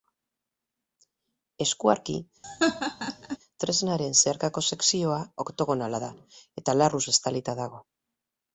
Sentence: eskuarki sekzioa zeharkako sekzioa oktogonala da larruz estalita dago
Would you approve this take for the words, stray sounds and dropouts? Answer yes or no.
no